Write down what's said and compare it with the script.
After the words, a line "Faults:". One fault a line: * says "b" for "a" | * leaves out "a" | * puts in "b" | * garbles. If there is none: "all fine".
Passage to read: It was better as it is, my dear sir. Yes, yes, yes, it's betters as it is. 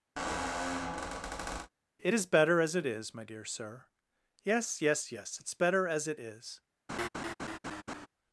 It is better as it is, my dear sir. Yes, yes, yes, it's better as it is.
Faults:
* says "is" for "was"
* says "better" for "betters"